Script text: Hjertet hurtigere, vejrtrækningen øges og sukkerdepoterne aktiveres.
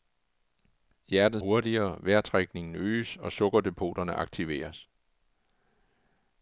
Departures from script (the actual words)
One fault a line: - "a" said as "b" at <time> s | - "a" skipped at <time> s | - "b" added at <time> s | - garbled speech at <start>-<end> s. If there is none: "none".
none